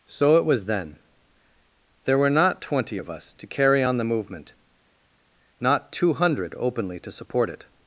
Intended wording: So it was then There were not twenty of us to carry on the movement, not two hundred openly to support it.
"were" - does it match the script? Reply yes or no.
yes